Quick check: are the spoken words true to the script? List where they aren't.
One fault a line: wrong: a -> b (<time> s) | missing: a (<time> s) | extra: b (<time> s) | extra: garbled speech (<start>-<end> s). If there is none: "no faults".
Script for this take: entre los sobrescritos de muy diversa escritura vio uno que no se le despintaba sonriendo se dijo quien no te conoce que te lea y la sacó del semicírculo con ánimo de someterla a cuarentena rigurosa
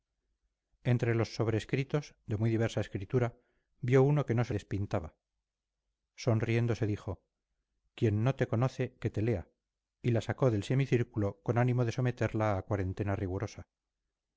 missing: le (4.5 s)